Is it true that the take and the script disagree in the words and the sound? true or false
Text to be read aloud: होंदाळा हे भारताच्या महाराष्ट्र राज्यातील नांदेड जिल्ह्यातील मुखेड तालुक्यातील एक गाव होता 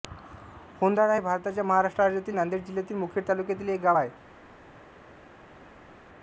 true